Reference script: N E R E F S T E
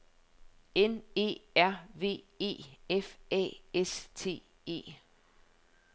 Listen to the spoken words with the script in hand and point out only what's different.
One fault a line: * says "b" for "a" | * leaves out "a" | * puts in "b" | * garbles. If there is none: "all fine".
* puts in "V"
* puts in "A"